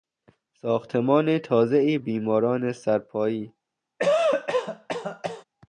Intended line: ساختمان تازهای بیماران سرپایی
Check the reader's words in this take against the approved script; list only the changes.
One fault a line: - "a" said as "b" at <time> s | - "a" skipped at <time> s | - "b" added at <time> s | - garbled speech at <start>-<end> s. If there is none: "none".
none